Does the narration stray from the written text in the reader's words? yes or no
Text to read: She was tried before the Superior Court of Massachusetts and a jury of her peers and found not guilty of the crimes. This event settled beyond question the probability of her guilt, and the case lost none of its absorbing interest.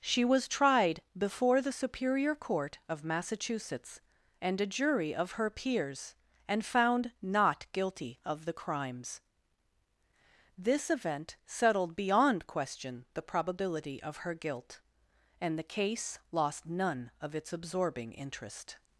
no